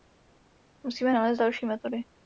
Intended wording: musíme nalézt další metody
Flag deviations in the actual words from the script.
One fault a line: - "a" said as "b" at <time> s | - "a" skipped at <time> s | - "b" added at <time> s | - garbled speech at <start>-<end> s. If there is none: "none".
none